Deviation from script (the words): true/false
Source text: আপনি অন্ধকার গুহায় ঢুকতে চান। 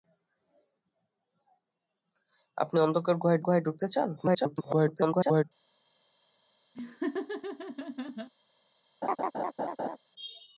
true